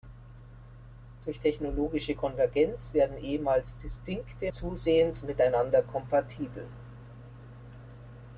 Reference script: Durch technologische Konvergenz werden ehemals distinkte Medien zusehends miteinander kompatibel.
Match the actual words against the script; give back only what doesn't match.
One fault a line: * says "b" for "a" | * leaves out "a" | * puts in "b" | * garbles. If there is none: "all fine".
* leaves out "Medien"